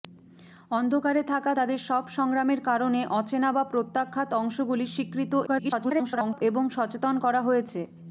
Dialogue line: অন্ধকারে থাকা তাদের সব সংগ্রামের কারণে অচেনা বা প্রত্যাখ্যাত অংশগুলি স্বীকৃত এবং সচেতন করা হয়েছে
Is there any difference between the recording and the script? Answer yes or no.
yes